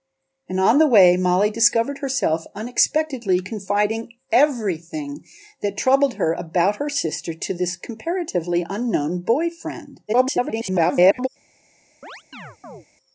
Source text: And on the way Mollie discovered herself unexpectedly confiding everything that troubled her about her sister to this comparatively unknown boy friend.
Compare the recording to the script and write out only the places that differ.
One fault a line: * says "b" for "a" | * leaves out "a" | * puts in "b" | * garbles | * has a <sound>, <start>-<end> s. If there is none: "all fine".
* garbles
* has a chirp, 12.0-12.9 s